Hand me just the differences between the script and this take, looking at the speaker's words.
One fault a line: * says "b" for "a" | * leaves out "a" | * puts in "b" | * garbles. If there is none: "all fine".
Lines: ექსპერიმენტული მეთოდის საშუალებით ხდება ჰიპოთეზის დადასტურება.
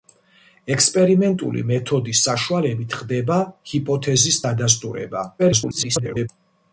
* garbles